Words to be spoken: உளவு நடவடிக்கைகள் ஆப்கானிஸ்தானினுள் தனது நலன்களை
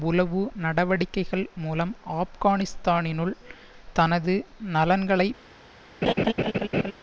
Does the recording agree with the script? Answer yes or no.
no